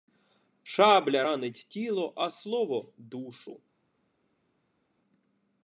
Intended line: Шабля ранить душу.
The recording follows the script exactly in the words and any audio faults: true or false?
false